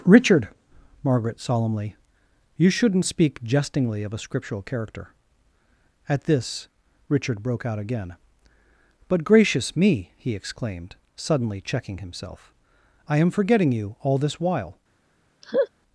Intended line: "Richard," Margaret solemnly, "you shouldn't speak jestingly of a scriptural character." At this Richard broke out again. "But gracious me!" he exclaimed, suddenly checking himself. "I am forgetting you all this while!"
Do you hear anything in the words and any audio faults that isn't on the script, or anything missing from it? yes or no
yes